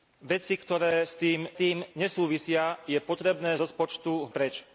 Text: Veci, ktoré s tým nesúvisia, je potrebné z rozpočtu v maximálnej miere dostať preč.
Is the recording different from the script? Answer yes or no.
yes